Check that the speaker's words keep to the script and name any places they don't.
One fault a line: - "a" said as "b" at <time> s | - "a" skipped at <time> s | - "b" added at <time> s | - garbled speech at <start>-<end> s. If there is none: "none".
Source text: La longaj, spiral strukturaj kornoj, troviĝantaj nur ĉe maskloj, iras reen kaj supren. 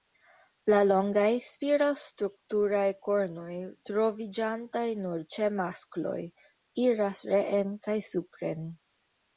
none